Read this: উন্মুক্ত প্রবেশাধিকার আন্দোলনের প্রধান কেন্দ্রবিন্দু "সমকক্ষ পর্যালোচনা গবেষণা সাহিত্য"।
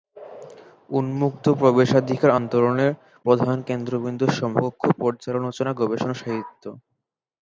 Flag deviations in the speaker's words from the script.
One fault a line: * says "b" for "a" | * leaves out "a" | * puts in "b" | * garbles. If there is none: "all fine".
all fine